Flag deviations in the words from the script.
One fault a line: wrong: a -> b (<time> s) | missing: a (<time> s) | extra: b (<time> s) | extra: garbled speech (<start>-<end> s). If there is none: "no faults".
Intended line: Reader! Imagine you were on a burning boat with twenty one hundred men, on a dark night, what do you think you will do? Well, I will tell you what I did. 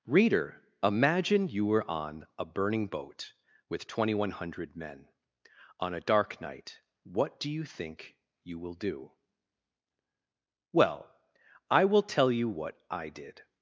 no faults